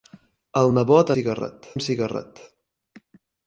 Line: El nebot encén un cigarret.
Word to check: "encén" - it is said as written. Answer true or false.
false